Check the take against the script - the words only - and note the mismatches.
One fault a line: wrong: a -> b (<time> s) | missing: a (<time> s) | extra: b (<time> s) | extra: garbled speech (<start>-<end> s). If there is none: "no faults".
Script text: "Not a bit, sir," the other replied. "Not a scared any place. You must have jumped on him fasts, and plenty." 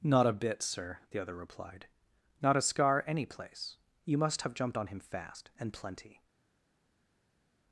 wrong: scared -> scar (2.6 s)
wrong: fasts -> fast (5.0 s)